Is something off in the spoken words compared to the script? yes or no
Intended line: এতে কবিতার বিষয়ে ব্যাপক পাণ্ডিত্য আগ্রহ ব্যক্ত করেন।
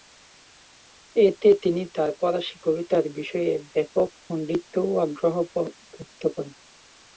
yes